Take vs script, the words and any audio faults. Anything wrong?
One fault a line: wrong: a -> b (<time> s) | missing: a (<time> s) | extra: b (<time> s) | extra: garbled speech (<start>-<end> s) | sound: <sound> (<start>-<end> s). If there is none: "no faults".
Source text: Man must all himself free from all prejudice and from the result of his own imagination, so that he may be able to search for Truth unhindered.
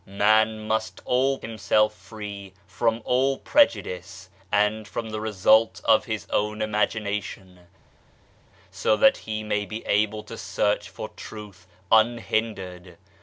no faults